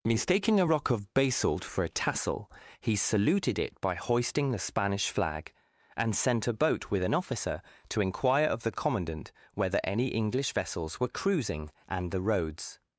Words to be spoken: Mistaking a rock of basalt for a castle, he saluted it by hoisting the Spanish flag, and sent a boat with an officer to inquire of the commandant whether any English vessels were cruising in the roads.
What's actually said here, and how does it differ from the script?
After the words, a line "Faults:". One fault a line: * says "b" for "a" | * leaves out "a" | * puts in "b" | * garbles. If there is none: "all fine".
Mistaking a rock of basalt for a tassel, he saluted it by hoisting the Spanish flag, and sent a boat with an officer to inquire of the commandant whether any English vessels were cruising and the roads.
Faults:
* says "tassel" for "castle"
* says "and" for "in"